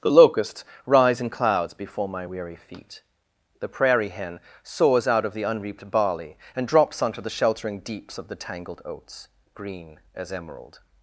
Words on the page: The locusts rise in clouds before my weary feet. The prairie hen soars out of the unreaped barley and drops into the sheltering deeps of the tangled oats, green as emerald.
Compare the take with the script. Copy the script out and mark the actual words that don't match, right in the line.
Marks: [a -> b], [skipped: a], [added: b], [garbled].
The locusts rise in clouds before my weary feet. The prairie hen soars out of the unreaped barley and drops [into -> onto] the sheltering deeps of the tangled oats, green as emerald.